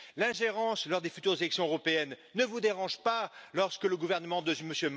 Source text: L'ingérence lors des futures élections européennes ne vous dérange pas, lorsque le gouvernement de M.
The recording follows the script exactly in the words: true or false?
true